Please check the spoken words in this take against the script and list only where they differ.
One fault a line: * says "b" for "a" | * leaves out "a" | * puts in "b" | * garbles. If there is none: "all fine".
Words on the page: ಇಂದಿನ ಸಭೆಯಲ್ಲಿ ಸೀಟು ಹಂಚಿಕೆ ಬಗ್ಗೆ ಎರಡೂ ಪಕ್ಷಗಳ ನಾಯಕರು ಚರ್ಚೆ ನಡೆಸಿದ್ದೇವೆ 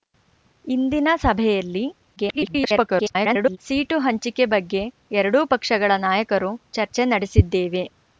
* garbles